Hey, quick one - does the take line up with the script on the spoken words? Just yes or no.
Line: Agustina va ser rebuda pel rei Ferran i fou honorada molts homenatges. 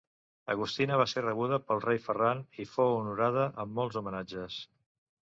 no